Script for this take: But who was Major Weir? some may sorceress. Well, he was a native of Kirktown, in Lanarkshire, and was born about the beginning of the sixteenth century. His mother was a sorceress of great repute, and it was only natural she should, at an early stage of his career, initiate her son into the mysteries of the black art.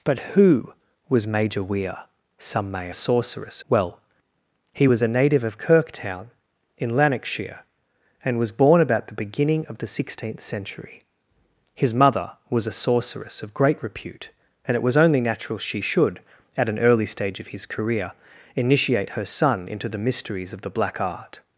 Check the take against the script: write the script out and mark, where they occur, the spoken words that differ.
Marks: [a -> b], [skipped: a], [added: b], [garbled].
But who was Major Weir? some may sorceress. Well, he was a native of Kirktown, in Lanarkshire, and was born about the beginning of the sixteenth century. His mother was a sorceress of great repute, and it was only natural she should, at an early stage of his career, initiate her son into the mysteries of the black art.